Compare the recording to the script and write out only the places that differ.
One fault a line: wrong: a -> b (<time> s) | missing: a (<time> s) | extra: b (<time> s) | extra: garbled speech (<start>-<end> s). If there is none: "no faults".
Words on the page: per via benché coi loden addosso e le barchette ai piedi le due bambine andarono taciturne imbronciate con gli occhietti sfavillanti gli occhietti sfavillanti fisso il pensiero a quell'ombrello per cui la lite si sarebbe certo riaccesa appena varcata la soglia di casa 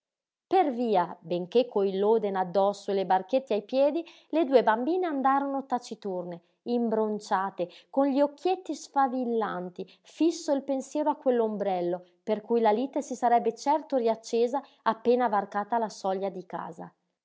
missing: gli occhietti sfavillanti (9.9 s)